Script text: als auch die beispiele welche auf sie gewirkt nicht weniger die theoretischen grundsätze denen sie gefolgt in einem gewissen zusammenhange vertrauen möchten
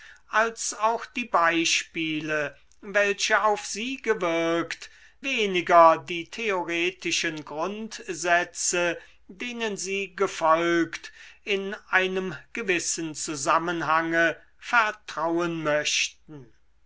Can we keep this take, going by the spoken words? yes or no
no